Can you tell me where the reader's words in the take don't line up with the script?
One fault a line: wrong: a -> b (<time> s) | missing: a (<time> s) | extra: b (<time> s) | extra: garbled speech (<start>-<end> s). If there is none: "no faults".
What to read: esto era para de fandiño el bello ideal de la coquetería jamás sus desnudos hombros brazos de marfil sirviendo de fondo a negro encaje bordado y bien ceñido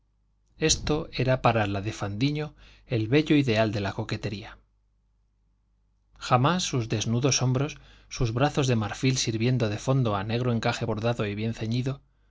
extra: la (1.7 s)
extra: sus (8.1 s)